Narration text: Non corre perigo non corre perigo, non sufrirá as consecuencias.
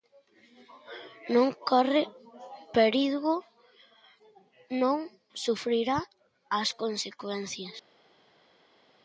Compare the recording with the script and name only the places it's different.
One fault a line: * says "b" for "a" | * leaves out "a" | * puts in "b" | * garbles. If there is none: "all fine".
* leaves out "corre perigo non"